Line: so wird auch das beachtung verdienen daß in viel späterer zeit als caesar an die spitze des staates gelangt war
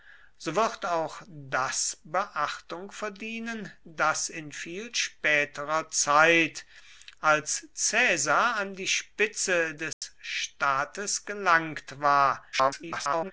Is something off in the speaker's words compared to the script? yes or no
yes